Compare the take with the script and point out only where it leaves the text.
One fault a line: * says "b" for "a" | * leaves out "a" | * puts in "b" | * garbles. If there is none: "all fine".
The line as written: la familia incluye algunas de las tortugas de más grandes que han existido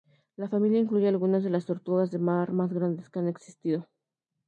* puts in "mar"